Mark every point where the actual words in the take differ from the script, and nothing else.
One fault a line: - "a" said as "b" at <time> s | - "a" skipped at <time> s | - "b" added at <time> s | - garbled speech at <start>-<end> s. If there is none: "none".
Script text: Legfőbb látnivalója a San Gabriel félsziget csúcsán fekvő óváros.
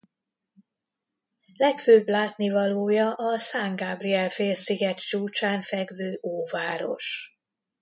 none